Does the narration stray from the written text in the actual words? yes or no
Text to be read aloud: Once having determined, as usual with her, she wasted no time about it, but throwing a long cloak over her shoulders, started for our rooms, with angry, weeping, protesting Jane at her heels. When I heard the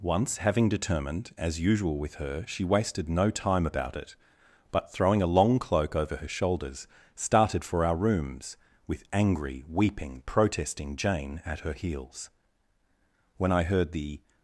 no